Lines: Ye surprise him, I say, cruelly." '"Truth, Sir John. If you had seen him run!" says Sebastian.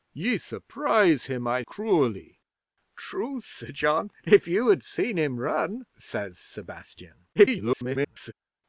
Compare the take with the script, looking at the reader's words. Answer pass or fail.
fail